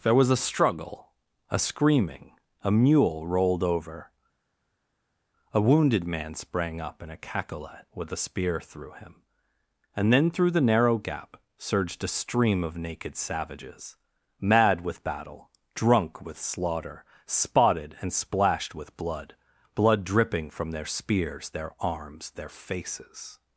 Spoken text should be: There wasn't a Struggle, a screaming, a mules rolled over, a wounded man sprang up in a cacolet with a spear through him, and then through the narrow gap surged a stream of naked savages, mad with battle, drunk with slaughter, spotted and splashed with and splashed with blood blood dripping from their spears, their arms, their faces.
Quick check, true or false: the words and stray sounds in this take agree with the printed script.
false